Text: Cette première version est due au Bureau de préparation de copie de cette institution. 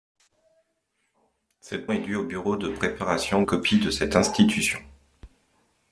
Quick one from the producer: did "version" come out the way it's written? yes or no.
no